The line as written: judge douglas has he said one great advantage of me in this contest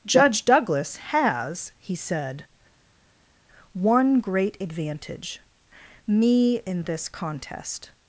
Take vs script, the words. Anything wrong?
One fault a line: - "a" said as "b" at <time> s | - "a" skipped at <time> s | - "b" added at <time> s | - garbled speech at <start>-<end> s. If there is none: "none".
- "of" skipped at 5.4 s